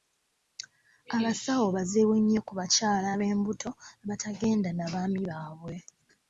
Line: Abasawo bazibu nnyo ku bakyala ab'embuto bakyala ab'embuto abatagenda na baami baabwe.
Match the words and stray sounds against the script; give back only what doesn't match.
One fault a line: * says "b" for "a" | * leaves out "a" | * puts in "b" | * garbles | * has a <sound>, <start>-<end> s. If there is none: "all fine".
* leaves out "bakyala ab'embuto"